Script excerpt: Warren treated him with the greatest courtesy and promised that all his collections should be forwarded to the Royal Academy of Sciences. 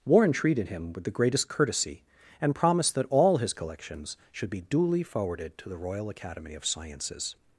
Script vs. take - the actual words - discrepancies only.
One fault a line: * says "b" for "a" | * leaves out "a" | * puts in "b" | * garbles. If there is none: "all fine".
* puts in "duly"